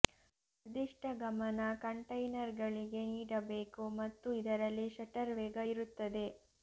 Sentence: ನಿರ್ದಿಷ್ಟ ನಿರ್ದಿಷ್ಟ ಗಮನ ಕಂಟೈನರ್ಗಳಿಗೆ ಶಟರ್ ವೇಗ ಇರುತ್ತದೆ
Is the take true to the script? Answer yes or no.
no